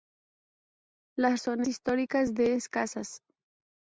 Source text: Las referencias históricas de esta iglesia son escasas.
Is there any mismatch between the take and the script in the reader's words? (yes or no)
yes